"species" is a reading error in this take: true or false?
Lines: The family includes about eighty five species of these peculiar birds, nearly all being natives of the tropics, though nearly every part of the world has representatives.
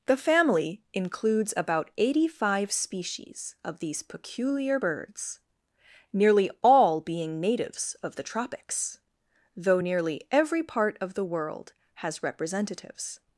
false